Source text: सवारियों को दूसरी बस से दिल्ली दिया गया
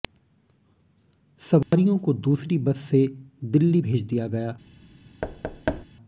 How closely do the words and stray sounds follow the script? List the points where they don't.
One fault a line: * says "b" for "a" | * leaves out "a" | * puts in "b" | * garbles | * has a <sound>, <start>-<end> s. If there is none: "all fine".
* has a dropout, 1.6-1.7 s
* puts in "भेज"
* has a thud, 5.2-5.8 s